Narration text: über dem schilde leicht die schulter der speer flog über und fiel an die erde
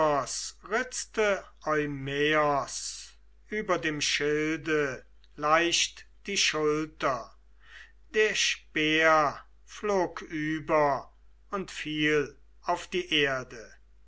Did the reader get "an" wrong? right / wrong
wrong